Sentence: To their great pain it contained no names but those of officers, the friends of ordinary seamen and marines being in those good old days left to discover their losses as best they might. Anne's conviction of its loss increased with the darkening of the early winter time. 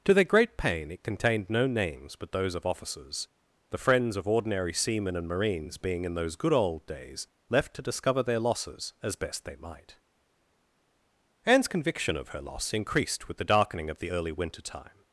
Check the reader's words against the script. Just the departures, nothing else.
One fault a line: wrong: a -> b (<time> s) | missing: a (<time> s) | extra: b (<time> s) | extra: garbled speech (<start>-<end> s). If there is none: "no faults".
wrong: its -> her (12.3 s)